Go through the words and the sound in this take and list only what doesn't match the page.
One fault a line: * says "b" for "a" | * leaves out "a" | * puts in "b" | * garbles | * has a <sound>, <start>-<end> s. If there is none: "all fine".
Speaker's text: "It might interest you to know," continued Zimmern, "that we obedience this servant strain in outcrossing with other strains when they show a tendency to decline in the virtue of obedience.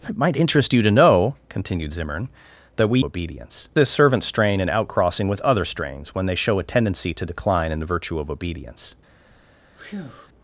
* has a breath, 9.8-10.3 s